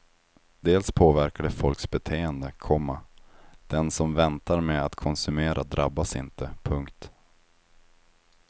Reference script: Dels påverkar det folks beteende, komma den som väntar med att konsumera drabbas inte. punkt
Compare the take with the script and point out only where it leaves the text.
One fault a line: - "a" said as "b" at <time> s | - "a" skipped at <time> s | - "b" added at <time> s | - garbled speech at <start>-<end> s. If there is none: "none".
none